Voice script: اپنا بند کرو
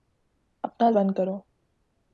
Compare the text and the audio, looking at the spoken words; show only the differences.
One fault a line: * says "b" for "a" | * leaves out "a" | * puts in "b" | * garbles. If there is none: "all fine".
all fine